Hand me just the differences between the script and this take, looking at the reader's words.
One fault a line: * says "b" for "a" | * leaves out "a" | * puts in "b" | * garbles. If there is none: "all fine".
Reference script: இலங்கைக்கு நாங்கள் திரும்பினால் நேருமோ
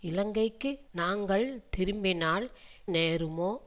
all fine